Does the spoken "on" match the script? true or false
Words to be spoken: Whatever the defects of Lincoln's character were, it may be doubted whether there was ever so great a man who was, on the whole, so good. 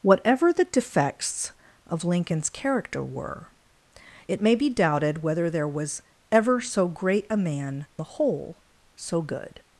false